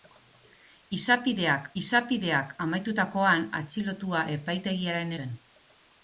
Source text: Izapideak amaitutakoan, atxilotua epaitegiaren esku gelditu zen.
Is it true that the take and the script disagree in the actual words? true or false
true